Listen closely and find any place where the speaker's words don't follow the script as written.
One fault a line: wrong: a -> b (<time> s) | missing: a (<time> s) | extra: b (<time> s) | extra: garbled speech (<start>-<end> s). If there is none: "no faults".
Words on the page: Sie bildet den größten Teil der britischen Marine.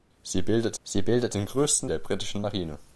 extra: sie bildet (0.8 s)
missing: Teil (1.9 s)